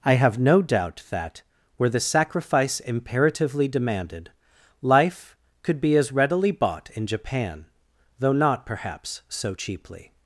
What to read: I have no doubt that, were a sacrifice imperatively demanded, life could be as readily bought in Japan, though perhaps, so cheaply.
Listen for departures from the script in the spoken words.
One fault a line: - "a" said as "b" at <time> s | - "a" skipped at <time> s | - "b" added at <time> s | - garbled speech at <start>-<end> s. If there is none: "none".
- "a" said as "the" at 1.9 s
- "not" added at 8.3 s